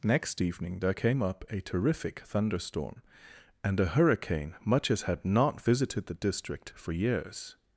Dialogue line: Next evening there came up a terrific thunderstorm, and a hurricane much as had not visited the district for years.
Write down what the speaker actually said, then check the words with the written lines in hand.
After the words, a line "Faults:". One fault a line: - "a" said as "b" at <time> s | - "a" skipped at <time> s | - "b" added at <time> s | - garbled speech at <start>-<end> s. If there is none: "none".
Next evening there came up a terrific thunderstorm, and a hurricane much as had not visited the district for years.
Faults:
none